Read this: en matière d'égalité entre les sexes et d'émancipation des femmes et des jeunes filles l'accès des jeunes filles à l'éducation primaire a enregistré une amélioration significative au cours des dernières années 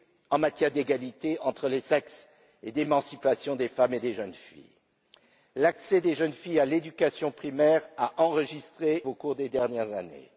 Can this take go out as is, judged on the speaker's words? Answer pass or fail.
fail